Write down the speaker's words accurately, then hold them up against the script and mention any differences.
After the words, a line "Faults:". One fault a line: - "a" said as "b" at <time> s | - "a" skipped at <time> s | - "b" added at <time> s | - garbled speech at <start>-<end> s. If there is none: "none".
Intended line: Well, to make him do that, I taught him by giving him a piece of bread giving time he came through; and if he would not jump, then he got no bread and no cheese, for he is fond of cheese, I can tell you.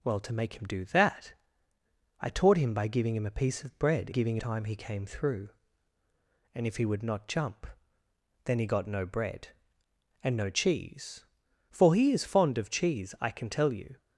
Well, to make him do that, I taught him by giving him a piece of bread giving time he came through; and if he would not jump, then he got no bread and no cheese, for he is fond of cheese, I can tell you.
Faults:
none